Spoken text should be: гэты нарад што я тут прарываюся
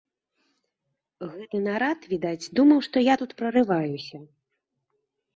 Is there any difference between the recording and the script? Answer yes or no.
yes